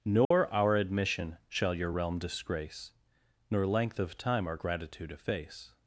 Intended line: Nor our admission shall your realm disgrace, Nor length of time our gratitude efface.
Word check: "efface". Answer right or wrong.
right